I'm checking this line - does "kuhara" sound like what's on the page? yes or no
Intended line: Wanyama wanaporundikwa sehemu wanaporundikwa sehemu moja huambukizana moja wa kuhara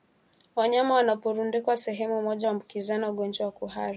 yes